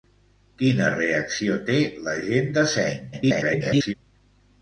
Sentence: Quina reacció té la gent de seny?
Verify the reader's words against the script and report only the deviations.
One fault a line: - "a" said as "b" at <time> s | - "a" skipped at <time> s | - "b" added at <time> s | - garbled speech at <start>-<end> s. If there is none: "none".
- garbled speech at 3.1-3.9 s